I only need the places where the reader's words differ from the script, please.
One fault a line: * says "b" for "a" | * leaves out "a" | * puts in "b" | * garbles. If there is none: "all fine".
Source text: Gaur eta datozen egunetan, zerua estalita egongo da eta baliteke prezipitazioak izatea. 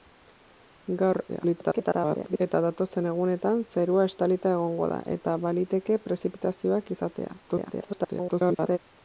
* garbles
* garbles